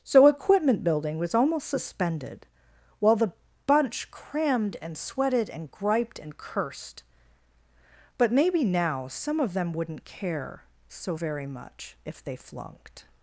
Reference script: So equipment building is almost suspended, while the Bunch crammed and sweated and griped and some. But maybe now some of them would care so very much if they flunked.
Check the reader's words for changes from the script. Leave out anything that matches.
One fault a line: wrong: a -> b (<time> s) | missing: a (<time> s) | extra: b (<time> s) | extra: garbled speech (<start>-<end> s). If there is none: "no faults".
wrong: is -> was (1.2 s)
wrong: some -> cursed (6.3 s)
wrong: would -> wouldn't (9.7 s)